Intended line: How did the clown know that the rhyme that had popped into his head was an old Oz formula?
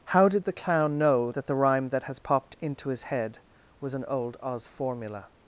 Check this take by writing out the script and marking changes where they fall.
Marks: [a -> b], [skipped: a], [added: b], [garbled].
How did the clown know that the rhyme that [had -> has] popped into his head was an old Oz formula?